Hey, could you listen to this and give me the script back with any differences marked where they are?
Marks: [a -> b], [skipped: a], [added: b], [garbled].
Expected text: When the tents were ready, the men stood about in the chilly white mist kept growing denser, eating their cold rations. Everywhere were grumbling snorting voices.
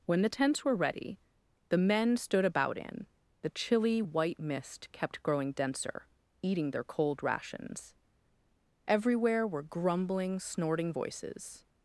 When the tents were ready, the men stood about in the chilly white mist kept growing denser, eating their cold rations. Everywhere were grumbling snorting voices.